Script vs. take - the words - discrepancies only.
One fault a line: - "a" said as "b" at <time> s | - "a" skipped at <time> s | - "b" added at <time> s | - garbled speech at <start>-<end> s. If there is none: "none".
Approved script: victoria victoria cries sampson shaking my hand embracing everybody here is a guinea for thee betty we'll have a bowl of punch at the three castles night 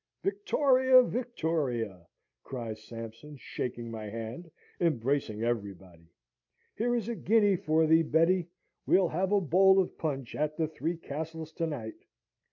- "to" added at 11.5 s